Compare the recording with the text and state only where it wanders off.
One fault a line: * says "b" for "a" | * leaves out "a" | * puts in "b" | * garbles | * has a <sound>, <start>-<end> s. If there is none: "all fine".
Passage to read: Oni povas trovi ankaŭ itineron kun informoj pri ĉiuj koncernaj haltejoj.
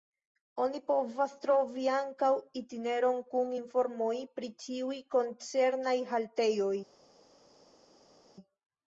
all fine